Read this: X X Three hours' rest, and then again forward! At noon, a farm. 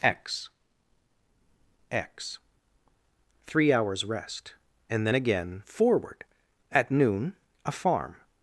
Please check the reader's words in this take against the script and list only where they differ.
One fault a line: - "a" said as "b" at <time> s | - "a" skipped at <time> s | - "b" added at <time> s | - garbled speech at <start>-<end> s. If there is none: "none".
none